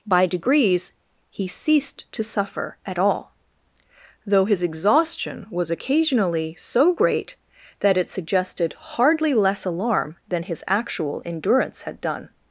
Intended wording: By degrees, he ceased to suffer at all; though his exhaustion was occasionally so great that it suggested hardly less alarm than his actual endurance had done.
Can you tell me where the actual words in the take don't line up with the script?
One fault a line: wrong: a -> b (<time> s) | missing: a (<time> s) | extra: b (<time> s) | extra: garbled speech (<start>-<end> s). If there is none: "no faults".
no faults